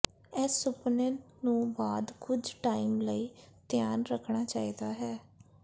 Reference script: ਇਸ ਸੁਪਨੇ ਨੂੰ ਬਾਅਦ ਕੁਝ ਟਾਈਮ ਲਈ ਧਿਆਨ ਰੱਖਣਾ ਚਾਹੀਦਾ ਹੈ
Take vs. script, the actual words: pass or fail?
pass